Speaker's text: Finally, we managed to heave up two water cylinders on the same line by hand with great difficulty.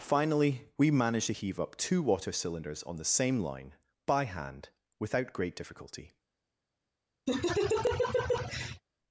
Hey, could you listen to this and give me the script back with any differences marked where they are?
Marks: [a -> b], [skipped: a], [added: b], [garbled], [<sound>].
Finally, we managed to heave up two water cylinders on the same line by hand [with -> without] great difficulty. [laugh]